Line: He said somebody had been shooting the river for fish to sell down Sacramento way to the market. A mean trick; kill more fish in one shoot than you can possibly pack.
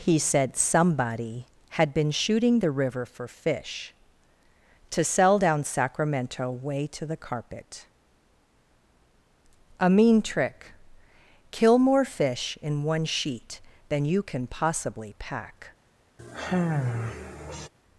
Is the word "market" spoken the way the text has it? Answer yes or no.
no